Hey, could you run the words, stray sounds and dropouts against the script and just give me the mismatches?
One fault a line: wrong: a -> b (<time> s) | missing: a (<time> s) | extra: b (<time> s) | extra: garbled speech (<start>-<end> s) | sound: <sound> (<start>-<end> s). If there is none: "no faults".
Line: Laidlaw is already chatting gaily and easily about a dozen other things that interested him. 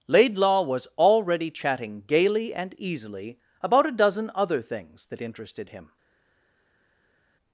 wrong: is -> was (0.6 s)